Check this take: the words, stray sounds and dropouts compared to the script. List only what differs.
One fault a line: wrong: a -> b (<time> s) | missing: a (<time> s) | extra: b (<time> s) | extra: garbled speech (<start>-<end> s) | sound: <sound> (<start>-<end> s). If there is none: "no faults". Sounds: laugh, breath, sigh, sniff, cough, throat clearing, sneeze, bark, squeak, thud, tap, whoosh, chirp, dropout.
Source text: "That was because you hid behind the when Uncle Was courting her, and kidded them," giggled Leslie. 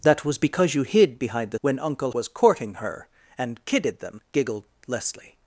no faults